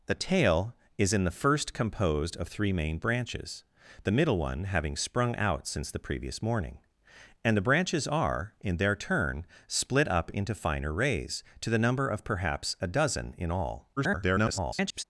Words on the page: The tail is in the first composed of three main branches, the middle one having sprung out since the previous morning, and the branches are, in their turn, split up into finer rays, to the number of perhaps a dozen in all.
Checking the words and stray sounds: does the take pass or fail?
fail